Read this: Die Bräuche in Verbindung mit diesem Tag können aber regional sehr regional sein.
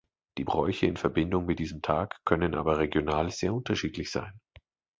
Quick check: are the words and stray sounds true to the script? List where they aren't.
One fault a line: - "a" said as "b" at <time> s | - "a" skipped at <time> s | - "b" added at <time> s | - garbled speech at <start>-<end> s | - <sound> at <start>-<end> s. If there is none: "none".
- "regional" said as "unterschiedlich" at 3.5 s